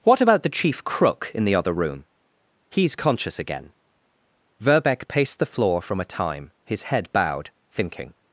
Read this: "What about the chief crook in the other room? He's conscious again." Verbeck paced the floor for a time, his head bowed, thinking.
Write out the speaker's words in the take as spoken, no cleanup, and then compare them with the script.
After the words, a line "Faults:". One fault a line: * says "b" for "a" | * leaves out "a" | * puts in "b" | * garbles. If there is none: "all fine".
"What about the chief crook in the other room? He's conscious again." Verbeck paced the floor from a time, his head bowed, thinking.
Faults:
* says "from" for "for"